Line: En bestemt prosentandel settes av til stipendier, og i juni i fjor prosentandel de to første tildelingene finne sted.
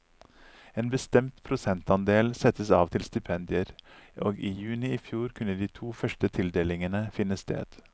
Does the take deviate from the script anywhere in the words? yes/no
yes